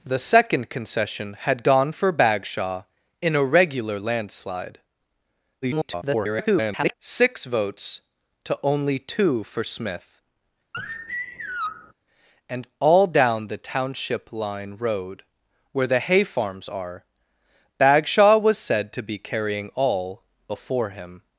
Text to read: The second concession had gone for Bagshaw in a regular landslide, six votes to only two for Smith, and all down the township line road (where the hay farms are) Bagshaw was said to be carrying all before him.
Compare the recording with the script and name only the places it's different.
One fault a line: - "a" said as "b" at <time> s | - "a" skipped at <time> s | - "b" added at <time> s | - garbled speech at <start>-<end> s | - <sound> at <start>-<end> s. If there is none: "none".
- garbled speech at 5.6-6.9 s
- sigh at 10.7-11.9 s